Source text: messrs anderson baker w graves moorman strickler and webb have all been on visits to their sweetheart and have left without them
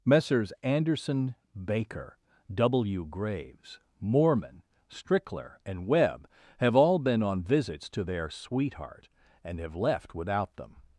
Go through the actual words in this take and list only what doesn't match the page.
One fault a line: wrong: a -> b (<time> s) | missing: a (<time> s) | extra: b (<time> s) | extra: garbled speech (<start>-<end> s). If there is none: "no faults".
no faults